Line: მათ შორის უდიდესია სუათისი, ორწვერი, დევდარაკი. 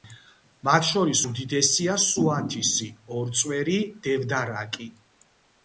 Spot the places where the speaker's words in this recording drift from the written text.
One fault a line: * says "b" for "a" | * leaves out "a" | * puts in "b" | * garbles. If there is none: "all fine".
all fine